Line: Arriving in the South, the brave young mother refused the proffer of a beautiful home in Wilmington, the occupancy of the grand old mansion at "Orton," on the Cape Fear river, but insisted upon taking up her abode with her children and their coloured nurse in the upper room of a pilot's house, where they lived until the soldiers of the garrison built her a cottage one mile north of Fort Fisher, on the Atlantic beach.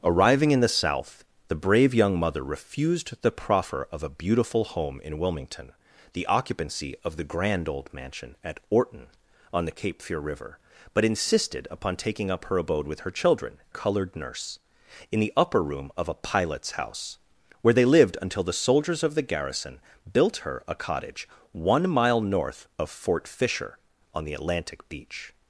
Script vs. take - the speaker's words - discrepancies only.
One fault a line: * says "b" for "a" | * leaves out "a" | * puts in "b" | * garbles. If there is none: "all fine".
* leaves out "and their"